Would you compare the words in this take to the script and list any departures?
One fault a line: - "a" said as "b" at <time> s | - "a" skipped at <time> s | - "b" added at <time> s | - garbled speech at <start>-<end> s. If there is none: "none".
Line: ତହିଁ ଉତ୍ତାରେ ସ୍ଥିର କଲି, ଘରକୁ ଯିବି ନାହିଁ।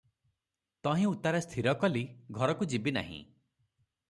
none